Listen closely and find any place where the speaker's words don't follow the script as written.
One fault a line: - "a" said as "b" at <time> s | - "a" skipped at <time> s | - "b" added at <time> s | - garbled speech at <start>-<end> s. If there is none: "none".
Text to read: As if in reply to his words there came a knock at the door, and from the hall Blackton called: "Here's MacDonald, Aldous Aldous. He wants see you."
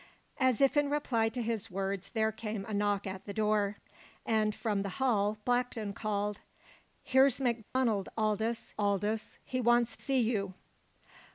none